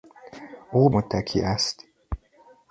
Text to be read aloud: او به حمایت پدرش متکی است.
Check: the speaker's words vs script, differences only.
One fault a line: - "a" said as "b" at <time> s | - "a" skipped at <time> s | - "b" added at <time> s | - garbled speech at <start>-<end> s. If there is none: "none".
- "به حمایت پدرش" skipped at 0.9 s